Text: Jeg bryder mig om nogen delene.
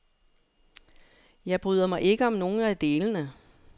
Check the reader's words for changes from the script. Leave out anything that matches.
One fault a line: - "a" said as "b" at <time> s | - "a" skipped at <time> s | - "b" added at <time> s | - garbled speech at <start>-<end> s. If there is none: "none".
- "ikke" added at 2.0 s
- "af" added at 2.6 s